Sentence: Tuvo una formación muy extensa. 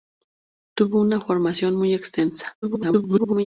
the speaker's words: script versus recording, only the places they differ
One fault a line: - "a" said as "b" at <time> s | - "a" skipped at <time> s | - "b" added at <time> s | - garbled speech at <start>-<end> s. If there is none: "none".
- garbled speech at 2.6-3.5 s